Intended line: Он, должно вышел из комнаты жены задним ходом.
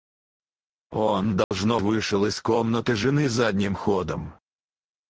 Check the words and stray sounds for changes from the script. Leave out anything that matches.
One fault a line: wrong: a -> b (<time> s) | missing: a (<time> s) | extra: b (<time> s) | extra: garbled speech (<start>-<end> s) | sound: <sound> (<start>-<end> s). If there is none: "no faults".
sound: dropout (1.4-1.5 s)